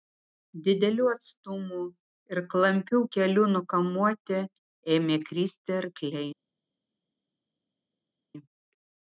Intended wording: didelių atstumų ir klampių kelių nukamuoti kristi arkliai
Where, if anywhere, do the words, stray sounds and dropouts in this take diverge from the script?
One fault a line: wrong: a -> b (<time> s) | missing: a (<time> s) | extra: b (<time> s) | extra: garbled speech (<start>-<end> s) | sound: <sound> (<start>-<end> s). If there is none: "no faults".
extra: ėmė (5.0 s)